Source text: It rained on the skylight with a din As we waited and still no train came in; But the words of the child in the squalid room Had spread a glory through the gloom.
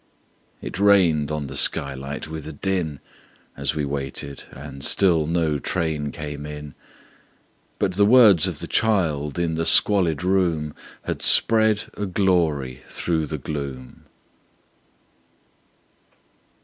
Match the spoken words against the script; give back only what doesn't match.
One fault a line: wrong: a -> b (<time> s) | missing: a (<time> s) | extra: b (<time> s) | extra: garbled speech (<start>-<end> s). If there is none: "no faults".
no faults